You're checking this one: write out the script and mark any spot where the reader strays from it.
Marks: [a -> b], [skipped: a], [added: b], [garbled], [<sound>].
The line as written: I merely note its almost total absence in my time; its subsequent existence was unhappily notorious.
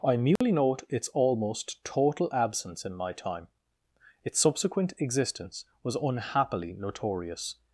I merely [dropout] note its almost total absence in my time; its subsequent existence was unhappily notorious.